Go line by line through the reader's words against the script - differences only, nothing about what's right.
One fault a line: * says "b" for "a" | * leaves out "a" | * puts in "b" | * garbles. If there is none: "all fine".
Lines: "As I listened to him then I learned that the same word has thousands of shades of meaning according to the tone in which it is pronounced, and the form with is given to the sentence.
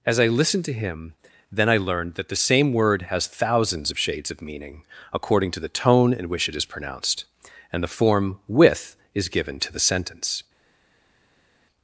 all fine